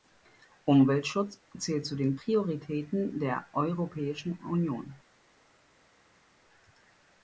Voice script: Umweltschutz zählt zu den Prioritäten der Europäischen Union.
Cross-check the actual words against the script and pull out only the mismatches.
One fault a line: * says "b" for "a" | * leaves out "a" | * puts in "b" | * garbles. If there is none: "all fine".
all fine